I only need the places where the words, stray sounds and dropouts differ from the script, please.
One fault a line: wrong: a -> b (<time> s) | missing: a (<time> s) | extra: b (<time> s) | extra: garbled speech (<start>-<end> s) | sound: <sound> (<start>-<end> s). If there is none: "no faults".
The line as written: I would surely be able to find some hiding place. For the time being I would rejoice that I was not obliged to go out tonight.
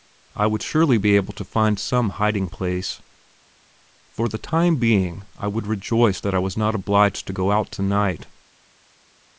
no faults